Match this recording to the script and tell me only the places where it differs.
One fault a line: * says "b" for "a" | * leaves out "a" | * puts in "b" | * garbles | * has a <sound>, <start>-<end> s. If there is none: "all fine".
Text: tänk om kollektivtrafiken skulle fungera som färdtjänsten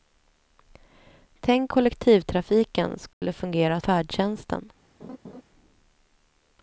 * leaves out "om"
* has a dropout, 3.1-3.2 s
* leaves out "som"
* has a laugh, 5.0-5.4 s